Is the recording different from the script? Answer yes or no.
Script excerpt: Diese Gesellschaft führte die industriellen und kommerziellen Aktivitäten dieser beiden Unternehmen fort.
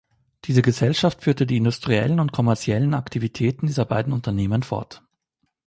no